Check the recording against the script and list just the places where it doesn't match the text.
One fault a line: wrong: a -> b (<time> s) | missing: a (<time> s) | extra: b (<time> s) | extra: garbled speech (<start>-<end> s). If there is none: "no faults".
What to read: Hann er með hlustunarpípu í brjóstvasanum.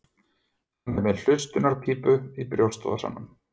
no faults